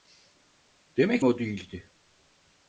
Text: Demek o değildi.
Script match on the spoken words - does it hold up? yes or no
yes